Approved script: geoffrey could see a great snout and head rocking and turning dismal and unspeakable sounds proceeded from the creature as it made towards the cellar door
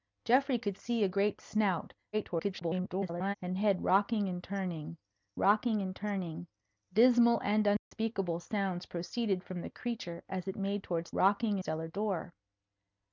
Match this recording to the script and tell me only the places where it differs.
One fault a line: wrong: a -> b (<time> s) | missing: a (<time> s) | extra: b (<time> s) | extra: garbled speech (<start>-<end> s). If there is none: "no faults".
extra: garbled speech (2.1-3.3 s)
extra: rocking and turning (5.4 s)
wrong: the -> rocking (11.1 s)